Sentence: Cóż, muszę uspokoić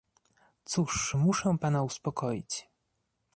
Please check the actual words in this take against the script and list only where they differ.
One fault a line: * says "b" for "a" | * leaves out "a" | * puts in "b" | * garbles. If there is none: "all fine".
* puts in "pana"